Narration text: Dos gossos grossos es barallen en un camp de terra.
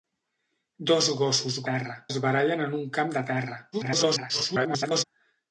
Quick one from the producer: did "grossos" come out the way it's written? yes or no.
no